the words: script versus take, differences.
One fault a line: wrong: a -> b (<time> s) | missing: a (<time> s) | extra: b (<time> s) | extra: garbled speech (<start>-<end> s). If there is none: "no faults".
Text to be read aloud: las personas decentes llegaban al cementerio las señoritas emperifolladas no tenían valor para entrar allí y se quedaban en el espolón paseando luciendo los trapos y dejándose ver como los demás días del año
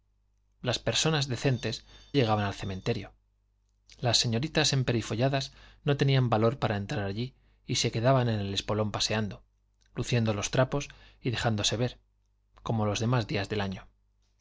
no faults